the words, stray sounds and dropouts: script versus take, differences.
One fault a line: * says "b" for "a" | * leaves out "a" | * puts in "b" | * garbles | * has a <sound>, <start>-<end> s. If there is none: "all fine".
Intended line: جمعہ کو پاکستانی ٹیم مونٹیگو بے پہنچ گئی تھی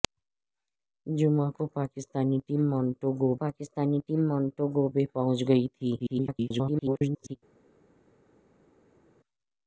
* puts in "پاکستانی ٹیم مونٹیگو"
* garbles